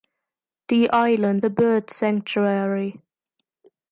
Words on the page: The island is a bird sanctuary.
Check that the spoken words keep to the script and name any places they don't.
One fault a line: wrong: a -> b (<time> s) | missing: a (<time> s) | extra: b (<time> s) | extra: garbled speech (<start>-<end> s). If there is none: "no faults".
missing: is (1.4 s)